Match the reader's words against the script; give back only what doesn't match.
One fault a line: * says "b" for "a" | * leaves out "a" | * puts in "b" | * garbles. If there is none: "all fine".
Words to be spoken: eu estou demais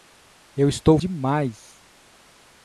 all fine